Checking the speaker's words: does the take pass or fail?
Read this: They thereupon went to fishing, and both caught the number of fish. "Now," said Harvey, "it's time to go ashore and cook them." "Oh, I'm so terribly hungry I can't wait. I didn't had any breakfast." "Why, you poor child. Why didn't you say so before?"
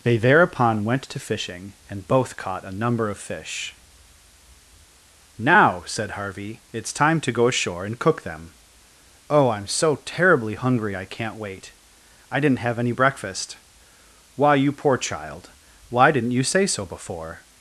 fail